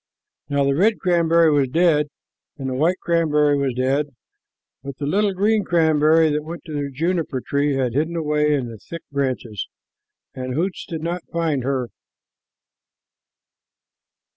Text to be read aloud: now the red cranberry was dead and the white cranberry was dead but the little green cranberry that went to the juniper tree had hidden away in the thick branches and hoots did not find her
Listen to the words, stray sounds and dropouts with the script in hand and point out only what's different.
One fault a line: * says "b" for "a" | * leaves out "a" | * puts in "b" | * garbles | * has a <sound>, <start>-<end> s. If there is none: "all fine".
all fine